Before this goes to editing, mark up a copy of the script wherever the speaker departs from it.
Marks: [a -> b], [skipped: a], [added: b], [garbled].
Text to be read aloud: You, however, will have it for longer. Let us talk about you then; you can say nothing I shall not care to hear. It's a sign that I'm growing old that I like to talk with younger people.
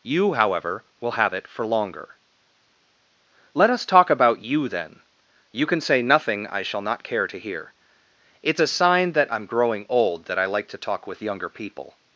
You, however, will have it for longer. Let us talk about you then; you can say nothing I shall not care to hear. It's a sign that I'm growing old that I like to talk with younger people.